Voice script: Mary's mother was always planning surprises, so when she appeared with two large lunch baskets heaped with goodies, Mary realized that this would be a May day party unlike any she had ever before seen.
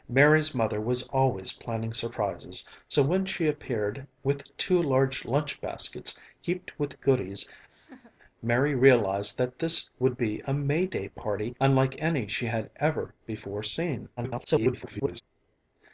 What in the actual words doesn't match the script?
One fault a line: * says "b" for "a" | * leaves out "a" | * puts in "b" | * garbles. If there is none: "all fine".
* garbles